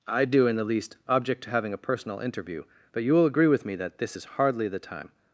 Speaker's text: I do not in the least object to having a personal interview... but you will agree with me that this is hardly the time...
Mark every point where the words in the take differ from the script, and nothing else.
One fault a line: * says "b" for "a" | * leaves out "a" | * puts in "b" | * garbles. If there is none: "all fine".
* leaves out "not"